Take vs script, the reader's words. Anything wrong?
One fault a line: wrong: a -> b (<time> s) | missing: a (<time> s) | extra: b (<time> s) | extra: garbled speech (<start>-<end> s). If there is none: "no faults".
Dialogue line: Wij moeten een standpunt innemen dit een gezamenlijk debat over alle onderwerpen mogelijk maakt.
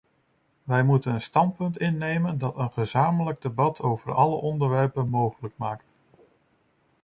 wrong: dit -> dat (2.4 s)